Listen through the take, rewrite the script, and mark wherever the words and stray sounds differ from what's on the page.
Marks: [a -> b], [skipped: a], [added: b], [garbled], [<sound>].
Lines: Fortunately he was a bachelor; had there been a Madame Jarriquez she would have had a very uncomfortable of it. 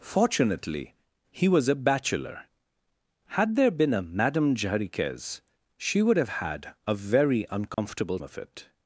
Fortunately he was a bachelor; had there been a Madame Jarriquez she would have had a very uncomfortable [dropout] of it.